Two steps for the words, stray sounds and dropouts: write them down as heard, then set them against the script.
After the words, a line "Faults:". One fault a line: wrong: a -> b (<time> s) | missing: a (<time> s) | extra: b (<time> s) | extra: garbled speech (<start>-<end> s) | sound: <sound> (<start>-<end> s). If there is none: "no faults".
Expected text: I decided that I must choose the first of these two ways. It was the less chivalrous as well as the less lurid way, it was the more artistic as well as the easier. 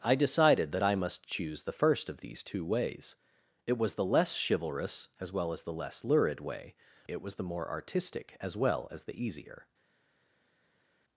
I decided that I must choose the first of these two ways. It was the less chivalrous as well as the less lurid way, it was the more artistic as well as the easier.
Faults:
no faults